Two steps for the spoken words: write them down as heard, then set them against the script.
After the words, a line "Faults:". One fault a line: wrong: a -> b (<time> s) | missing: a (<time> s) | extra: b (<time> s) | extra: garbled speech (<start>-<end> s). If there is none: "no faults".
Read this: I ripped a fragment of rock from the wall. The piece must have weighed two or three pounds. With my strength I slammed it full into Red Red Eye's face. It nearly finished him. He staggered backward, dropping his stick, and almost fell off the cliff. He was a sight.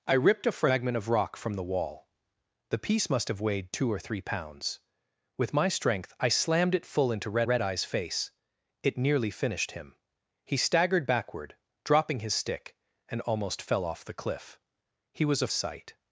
I ripped a fragment of rock from the wall. The piece must have weighed two or three pounds. With my strength I slammed it full into Red Red Eye's face. It nearly finished him. He staggered backward, dropping his stick, and almost fell off the cliff. He was a sight.
Faults:
no faults